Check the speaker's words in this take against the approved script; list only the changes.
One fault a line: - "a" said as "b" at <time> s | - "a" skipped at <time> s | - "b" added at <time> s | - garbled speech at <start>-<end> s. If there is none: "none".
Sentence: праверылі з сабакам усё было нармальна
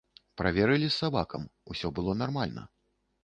none